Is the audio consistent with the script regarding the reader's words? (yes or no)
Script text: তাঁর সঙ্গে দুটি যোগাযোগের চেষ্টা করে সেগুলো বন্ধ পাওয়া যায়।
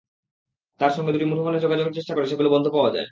no